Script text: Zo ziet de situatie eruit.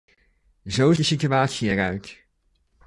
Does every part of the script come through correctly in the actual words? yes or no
no